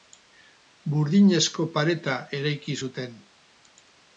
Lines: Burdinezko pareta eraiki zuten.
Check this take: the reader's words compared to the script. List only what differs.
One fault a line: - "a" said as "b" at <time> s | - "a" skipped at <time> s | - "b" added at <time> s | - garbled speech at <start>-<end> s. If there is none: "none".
none